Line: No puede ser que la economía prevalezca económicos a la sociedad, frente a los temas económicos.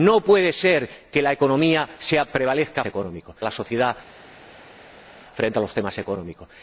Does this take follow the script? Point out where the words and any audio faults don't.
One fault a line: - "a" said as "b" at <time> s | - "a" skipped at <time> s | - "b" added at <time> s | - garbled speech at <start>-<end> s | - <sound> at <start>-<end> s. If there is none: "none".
none